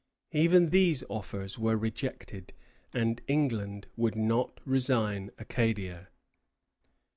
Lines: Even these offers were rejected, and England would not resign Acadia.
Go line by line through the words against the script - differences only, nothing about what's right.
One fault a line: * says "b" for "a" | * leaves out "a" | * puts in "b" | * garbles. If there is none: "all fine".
all fine